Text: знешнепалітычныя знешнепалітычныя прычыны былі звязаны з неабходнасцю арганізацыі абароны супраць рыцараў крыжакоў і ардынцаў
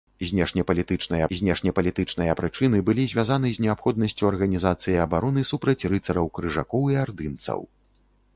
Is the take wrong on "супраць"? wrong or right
right